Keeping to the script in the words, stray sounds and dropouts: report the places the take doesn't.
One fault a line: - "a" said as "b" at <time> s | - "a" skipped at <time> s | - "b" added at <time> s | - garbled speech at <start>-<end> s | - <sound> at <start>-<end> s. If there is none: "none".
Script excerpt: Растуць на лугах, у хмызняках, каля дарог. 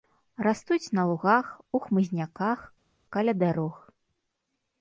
none